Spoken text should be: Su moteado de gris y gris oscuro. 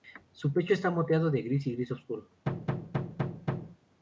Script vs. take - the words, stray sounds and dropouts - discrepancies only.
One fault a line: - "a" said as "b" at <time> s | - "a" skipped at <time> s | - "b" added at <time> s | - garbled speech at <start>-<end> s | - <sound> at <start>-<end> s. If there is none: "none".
- "pecho está" added at 0.5 s
- thud at 2.5-3.8 s